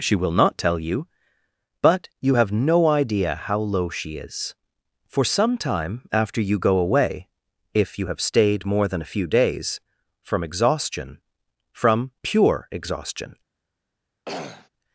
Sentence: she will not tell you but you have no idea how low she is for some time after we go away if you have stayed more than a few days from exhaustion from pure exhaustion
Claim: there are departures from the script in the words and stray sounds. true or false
true